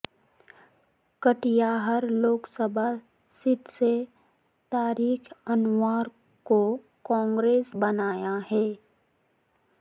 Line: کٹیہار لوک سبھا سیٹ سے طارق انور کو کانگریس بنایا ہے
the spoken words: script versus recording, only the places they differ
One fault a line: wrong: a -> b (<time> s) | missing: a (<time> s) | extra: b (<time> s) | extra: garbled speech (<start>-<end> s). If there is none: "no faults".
no faults